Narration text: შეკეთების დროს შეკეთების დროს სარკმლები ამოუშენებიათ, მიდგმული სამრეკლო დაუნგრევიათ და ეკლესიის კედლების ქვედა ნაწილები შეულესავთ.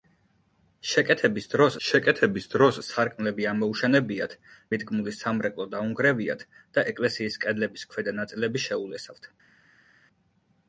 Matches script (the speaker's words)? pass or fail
pass